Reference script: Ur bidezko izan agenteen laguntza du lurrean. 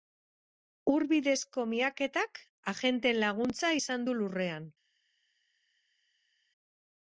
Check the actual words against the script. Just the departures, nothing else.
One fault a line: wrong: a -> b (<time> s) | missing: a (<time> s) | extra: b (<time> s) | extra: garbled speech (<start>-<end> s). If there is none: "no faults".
wrong: izan -> miaketak (1.7 s)
extra: izan (3.8 s)